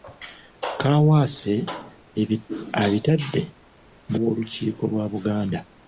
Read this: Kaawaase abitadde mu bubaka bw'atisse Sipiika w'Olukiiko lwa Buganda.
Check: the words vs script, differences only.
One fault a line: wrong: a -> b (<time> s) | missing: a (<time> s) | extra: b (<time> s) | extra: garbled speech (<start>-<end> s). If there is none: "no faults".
missing: bubaka bw'atisse Sipiika (4.2 s)